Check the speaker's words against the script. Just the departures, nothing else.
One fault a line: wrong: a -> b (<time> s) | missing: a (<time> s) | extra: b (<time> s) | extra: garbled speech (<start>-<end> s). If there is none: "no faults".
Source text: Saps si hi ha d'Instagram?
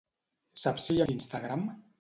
no faults